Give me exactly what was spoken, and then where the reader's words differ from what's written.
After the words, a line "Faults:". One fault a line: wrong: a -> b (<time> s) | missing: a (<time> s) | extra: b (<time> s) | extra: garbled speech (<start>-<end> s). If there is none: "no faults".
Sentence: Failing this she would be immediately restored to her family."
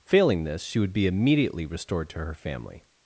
Failing this she would be immediately restored to her family."
Faults:
no faults